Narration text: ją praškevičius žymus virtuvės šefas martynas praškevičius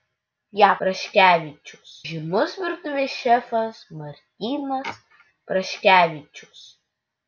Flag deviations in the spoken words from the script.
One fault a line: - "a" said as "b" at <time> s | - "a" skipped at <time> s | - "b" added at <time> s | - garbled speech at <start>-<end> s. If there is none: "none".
none